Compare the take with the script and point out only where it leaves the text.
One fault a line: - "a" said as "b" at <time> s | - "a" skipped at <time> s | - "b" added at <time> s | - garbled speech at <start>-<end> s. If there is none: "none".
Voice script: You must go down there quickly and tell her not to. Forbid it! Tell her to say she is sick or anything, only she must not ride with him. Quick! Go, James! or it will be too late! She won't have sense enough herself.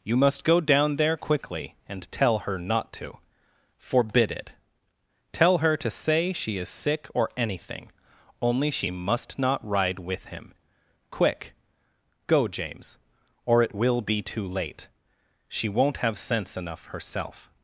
none